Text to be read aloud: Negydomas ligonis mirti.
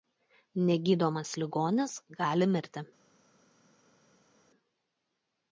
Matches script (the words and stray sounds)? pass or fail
fail